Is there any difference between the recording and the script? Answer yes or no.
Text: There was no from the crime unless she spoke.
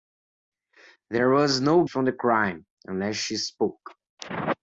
no